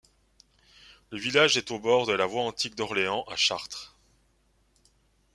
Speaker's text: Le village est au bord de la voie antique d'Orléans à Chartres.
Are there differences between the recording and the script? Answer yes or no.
no